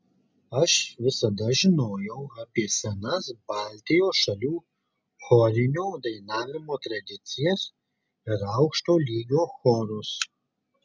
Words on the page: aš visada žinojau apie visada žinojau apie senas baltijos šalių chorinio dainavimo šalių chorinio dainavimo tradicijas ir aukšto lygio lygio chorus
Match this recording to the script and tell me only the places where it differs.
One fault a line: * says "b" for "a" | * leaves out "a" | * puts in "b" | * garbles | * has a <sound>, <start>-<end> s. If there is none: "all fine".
* leaves out "visada žinojau apie"
* leaves out "šalių chorinio dainavimo"
* leaves out "lygio"